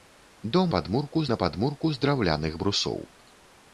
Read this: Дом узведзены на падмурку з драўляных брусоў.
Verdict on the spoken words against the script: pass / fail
fail